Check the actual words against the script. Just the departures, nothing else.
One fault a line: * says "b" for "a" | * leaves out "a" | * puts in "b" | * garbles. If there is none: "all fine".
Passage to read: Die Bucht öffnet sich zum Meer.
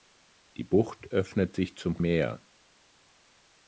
all fine